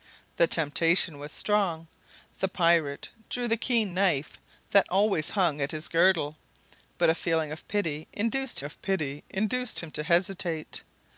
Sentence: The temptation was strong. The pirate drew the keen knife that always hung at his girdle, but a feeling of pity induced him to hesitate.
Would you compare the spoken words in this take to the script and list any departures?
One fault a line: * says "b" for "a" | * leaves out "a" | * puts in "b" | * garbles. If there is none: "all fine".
* puts in "of pity induced"